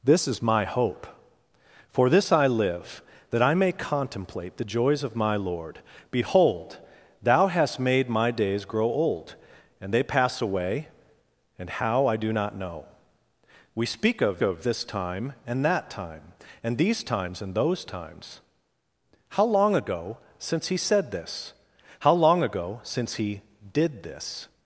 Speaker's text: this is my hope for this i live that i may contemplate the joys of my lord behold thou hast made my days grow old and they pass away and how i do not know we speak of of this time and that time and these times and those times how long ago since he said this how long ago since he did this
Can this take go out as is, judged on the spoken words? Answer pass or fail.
pass